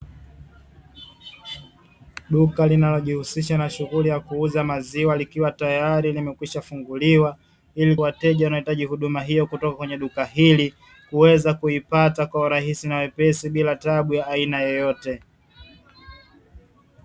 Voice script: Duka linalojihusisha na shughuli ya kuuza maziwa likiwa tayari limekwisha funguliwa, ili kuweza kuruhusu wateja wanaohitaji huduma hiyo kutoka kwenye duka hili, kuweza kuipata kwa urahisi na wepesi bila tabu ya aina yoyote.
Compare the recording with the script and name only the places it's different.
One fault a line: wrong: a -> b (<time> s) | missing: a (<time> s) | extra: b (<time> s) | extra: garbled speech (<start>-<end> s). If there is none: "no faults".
missing: kuweza kuruhusu (8.0 s)